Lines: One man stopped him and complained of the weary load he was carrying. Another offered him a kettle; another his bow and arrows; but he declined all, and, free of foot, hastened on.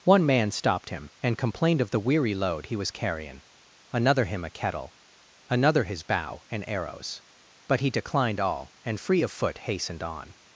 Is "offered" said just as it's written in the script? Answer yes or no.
no